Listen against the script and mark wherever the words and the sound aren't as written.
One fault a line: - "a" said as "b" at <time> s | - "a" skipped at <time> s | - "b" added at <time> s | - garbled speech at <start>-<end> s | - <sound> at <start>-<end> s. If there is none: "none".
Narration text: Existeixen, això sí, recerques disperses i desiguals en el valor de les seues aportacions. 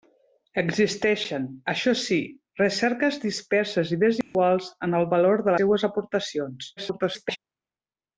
- dropout at 4.2-4.3 s
- "les" skipped at 5.5 s
- garbled speech at 6.8-7.4 s